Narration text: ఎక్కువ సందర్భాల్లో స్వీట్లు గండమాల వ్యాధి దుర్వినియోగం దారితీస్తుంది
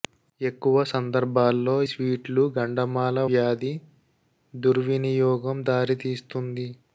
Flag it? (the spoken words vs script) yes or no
no